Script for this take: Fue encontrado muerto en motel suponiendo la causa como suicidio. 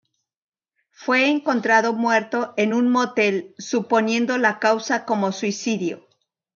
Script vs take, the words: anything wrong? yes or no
yes